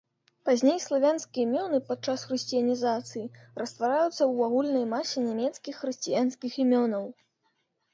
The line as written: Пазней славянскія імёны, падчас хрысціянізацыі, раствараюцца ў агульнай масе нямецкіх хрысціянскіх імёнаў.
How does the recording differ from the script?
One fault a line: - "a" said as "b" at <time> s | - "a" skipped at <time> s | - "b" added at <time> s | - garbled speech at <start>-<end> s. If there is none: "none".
none